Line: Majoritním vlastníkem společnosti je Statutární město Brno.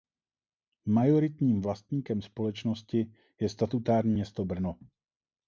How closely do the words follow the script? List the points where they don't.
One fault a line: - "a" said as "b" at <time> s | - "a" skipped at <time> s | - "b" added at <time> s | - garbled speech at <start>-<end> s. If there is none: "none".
none